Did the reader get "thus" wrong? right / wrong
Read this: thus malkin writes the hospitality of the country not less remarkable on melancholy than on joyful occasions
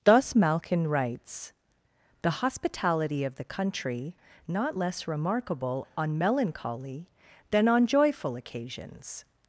right